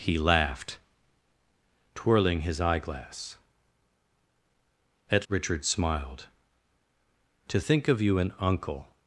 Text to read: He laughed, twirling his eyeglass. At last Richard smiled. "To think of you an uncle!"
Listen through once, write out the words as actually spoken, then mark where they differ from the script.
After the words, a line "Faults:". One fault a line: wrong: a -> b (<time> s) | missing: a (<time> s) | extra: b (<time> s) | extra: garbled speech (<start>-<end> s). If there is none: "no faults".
He laughed, twirling his eyeglass. At Richard smiled. "To think of you an uncle!"
Faults:
missing: last (5.3 s)